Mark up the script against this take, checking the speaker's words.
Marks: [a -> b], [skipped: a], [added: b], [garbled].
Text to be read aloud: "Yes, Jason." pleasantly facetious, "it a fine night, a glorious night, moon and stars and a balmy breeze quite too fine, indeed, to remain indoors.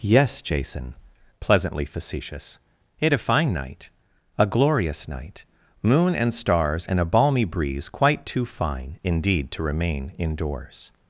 "Yes, Jason." pleasantly facetious, "it a fine night, a glorious night, moon and stars and a balmy breeze quite too fine, indeed, to remain indoors.